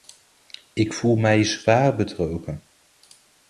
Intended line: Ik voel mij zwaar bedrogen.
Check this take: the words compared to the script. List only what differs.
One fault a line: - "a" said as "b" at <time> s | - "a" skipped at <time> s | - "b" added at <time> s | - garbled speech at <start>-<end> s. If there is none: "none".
none